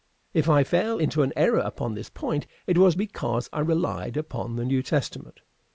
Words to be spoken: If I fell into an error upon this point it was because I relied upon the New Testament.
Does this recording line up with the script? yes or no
yes